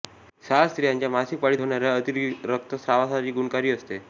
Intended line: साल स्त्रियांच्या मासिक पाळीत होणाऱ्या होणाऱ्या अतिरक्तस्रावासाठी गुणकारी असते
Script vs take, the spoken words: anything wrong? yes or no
yes